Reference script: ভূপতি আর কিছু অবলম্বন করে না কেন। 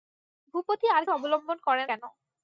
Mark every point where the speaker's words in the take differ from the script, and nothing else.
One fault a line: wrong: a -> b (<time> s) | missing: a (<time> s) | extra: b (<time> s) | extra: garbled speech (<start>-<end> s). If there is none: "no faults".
missing: কিছু (1.0 s)
missing: না (1.8 s)